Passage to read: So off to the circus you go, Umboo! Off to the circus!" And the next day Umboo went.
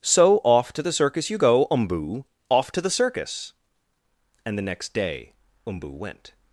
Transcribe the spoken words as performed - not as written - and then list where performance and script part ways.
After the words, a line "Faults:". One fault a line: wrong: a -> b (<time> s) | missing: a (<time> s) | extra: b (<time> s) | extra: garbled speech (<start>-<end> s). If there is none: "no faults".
So off to the circus you go, Umboo! Off to the circus!" And the next day Umboo went.
Faults:
no faults